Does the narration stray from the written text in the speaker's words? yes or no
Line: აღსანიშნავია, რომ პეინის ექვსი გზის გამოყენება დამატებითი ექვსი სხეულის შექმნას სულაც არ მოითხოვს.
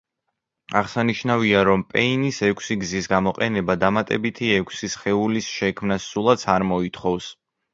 no